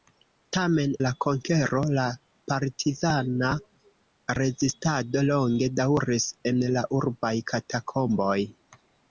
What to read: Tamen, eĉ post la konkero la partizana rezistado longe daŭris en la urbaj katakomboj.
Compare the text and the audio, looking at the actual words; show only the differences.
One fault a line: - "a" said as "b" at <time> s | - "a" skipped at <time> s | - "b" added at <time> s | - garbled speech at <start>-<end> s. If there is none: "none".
- "eĉ post" skipped at 0.9 s